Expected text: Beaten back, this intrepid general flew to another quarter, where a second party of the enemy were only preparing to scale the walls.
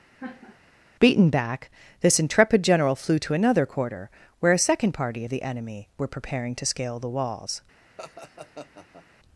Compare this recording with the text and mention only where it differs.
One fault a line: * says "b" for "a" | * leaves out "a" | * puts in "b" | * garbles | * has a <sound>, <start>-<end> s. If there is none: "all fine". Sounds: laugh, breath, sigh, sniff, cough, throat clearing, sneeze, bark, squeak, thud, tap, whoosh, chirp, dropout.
* has a laugh, 0.2-0.6 s
* leaves out "only"
* has a laugh, 8.0-9.1 s